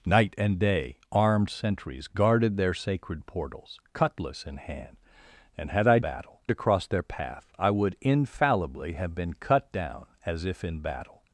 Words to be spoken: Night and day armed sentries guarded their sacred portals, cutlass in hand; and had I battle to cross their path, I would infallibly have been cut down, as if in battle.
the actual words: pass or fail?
pass